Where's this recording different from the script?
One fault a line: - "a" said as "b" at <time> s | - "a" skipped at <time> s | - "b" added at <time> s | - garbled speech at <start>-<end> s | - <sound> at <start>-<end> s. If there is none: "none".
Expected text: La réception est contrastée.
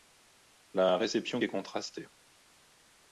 none